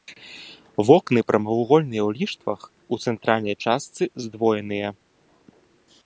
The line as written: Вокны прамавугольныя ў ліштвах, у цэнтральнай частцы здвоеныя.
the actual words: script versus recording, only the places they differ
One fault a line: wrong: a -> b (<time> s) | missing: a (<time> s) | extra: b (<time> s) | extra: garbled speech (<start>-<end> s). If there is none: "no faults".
no faults